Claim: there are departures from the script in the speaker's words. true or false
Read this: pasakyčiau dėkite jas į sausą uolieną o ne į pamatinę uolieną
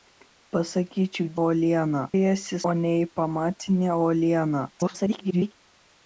true